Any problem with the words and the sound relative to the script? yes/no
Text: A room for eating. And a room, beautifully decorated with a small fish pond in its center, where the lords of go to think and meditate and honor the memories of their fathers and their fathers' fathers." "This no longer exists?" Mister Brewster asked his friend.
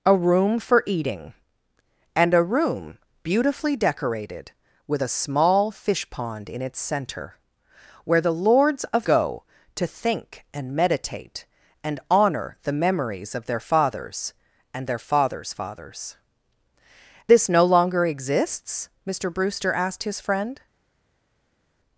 no